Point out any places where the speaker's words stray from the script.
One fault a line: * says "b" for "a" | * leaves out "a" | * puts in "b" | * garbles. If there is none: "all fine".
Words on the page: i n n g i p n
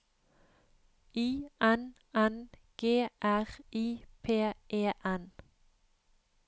* puts in "r"
* puts in "e"